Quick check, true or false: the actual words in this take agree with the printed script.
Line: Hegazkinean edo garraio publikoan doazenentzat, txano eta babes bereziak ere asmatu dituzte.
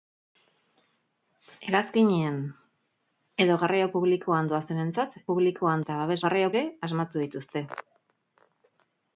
false